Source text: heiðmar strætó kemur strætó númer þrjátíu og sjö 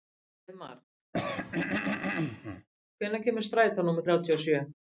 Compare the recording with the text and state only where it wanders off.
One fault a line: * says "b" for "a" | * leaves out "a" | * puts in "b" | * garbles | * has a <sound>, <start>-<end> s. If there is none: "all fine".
* has a throat clearing, 1.1-2.7 s
* says "hvenær" for "strætó"